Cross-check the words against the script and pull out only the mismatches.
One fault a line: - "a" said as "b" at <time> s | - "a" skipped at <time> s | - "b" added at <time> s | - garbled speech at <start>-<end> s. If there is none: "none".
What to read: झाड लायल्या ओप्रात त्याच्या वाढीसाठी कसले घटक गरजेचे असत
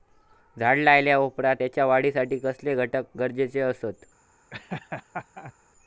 none